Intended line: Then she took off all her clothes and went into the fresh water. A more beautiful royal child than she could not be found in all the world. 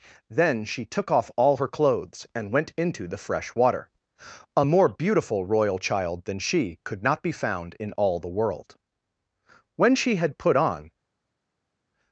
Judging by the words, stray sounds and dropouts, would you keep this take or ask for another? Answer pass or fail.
fail